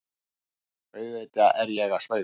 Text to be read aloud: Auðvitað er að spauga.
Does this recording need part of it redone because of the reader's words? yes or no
yes